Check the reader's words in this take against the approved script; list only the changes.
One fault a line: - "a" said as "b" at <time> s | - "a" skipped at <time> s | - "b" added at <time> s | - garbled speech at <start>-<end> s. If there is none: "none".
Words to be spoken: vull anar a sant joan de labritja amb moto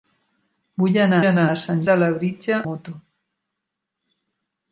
- "anar" added at 1.3 s
- "joan" skipped at 1.8 s
- "amb" skipped at 2.6 s